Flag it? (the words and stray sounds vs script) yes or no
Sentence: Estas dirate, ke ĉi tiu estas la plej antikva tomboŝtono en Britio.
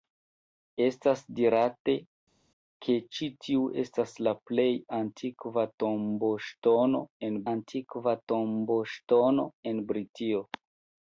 yes